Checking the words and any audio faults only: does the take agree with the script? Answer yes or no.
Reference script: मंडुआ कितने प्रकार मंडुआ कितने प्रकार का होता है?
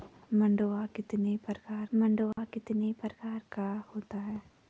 no